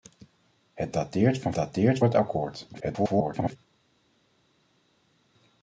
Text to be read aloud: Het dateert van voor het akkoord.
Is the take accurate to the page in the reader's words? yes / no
no